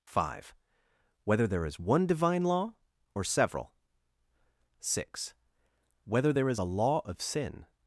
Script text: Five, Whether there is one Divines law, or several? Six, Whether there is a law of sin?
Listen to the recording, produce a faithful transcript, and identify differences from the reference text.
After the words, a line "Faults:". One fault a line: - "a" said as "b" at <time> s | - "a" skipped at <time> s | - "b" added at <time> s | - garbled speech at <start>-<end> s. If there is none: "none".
Five, Whether there is one Divine law, or several? Six, Whether there is a law of sin?
Faults:
- "Divines" said as "Divine" at 2.0 s